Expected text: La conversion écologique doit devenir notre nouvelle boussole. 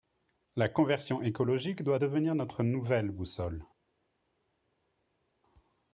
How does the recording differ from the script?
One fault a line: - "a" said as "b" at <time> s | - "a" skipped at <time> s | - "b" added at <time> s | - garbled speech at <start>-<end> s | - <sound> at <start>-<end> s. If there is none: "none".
none